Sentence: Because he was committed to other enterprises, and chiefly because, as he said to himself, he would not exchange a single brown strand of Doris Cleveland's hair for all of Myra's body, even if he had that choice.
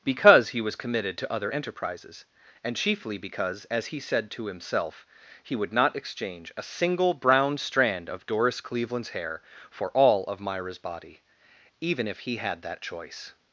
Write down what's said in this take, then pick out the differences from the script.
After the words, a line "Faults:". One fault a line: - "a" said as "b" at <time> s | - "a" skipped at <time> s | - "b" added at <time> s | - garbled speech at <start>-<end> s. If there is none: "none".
Because he was committed to other enterprises, and chiefly because, as he said to himself, he would not exchange a single brown strand of Doris Cleveland's hair for all of Myra's body, even if he had that choice.
Faults:
none